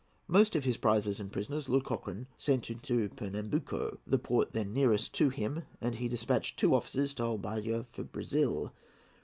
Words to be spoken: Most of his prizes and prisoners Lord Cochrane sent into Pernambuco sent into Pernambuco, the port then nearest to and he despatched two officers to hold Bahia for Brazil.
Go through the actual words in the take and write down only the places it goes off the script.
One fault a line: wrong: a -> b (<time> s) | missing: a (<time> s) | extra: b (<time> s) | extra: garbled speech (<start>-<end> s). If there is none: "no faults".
missing: sent into Pernambuco (4.0 s)
extra: him (5.3 s)